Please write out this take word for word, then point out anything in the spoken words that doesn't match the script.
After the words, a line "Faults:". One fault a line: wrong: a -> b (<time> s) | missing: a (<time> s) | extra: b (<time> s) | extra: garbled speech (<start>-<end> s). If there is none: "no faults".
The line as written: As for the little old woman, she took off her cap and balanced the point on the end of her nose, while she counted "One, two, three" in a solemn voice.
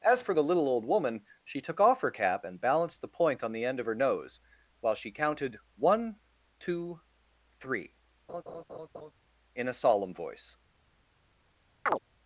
As for the little old woman, she took off her cap and balanced the point on the end of her nose, while she counted "One, two, three" in a solemn voice.
Faults:
no faults